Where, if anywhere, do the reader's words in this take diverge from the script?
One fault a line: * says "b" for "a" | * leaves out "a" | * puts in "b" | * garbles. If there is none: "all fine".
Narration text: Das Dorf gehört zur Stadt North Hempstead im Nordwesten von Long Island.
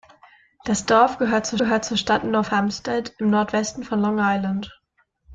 * puts in "gehört zur"